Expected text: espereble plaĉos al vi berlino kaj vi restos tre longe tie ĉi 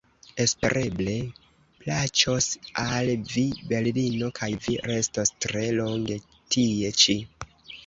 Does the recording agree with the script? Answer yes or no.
yes